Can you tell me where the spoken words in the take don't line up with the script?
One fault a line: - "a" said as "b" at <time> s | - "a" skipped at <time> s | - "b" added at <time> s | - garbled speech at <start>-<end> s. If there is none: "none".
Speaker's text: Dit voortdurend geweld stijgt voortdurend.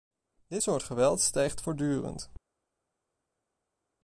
- "voortdurend" said as "soort" at 0.6 s